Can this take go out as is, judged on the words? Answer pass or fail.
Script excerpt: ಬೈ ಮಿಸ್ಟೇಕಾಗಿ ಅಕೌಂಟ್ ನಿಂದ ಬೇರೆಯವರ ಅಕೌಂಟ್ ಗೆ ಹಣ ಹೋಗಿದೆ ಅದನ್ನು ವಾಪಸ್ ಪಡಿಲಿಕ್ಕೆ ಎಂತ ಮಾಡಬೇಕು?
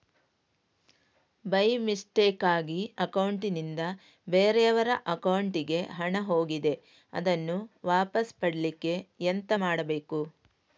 pass